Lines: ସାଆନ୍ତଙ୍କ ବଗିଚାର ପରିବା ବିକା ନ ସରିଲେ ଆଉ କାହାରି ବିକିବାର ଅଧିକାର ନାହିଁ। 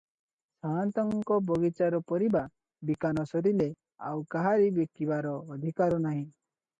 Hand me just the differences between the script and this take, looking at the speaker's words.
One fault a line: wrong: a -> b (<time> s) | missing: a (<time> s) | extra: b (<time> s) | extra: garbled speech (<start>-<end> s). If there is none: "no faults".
no faults